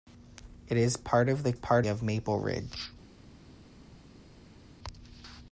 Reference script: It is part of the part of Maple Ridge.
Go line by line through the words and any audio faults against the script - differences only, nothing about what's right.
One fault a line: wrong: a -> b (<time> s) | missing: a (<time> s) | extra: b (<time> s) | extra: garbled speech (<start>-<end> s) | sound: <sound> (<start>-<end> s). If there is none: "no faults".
no faults